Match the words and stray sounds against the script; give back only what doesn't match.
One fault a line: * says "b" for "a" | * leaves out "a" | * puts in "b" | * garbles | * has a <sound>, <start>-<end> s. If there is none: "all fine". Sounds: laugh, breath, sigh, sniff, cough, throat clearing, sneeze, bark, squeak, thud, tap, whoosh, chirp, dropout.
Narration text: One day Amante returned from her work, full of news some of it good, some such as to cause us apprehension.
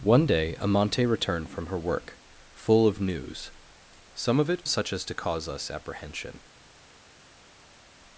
* leaves out "good some"